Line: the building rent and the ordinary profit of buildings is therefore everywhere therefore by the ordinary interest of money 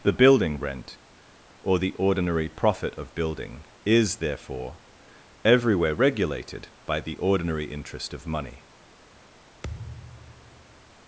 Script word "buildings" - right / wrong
wrong